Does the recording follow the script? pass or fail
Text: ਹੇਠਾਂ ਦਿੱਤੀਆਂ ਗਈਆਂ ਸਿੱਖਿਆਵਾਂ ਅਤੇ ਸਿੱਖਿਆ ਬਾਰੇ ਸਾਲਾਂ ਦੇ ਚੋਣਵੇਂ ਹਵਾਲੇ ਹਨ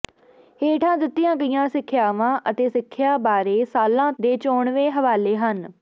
pass